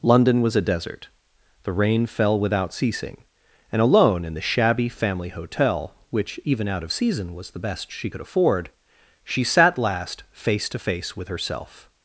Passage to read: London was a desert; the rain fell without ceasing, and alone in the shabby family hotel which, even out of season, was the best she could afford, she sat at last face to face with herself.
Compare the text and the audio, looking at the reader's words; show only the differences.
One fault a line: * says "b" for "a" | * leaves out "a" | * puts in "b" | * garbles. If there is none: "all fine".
* leaves out "at"